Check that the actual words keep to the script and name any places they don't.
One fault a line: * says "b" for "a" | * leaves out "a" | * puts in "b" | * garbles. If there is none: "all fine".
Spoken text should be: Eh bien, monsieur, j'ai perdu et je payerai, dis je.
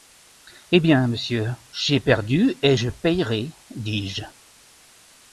all fine